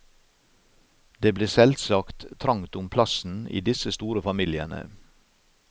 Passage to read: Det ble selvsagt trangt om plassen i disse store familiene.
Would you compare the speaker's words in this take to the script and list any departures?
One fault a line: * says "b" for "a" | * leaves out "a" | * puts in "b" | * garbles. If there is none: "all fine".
all fine